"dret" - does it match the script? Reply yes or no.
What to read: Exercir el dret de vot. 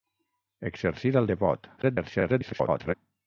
no